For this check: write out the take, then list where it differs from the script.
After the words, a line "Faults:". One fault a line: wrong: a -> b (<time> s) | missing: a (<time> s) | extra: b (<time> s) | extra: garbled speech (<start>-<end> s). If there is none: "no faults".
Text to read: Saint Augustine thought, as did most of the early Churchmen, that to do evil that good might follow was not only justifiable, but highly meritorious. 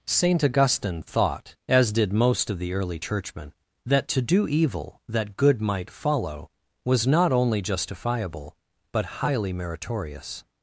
Saint Augustine thought, as did most of the early Churchmen, that to do evil that good might follow was not only justifiable, but highly meritorious.
Faults:
no faults